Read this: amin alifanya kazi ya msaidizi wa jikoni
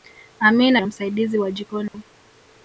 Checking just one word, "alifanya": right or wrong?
wrong